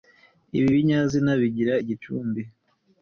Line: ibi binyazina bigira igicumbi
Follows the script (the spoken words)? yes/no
yes